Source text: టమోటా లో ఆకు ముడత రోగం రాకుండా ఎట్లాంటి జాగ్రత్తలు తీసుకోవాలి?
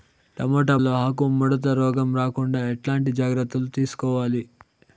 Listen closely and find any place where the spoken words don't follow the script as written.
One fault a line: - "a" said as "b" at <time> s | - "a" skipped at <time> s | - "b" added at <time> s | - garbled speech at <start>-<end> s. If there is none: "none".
none